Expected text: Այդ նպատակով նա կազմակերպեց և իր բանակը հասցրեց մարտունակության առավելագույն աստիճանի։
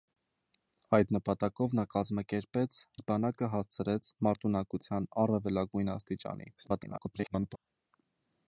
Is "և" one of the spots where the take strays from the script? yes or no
yes